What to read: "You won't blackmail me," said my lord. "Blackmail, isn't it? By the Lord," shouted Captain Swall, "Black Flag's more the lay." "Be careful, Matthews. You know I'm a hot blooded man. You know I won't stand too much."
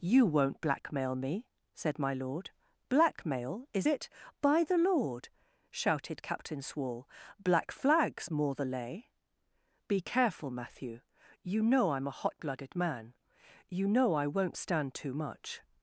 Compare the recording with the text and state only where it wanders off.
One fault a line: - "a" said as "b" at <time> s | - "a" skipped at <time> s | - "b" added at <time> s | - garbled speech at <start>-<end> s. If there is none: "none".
- "isn't" said as "is" at 3.7 s
- "Matthews" said as "Matthew" at 10.5 s